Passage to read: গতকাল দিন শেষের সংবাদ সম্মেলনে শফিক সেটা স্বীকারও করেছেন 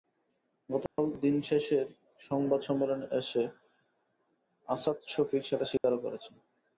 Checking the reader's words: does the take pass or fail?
fail